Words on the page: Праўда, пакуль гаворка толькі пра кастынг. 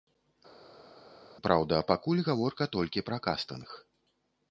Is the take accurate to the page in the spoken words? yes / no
yes